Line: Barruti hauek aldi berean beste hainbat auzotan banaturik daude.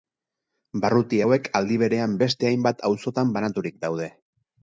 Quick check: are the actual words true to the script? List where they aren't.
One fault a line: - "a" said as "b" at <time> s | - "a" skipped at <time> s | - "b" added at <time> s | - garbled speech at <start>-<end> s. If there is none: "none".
none